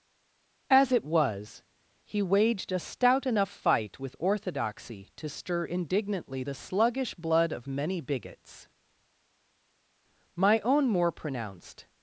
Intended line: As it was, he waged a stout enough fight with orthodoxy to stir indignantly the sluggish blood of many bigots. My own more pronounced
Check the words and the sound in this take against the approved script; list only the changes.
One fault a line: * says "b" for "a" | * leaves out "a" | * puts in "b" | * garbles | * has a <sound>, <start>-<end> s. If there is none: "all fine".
all fine